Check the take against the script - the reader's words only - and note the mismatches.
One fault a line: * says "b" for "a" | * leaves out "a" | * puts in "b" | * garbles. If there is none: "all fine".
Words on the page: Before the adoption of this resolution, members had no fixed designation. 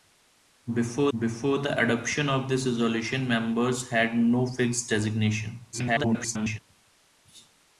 * puts in "before"
* garbles